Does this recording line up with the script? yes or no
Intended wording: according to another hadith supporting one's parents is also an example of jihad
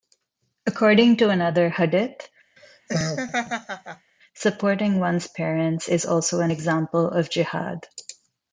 yes